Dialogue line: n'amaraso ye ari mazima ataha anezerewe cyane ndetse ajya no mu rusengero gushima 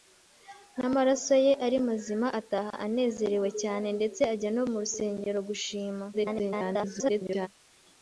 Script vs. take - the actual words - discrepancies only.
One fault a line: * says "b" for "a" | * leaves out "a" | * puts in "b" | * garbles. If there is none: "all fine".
* garbles